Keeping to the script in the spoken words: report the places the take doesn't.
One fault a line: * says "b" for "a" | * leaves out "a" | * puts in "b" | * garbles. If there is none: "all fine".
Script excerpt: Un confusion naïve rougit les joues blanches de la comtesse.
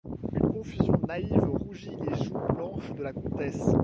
* says "Une" for "Un"